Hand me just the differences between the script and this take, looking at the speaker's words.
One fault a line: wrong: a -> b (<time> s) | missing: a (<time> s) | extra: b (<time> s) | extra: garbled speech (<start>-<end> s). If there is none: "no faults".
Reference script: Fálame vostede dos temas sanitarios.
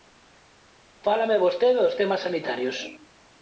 no faults